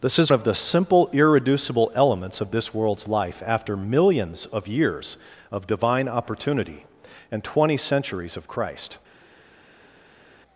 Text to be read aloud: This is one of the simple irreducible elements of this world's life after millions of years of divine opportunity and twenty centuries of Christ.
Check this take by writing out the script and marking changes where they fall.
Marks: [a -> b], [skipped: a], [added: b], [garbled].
This is [skipped: one] of the simple irreducible elements of this world's life after millions of years of divine opportunity and twenty centuries of Christ.